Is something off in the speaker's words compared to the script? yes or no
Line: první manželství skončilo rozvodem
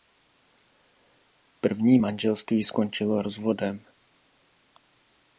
no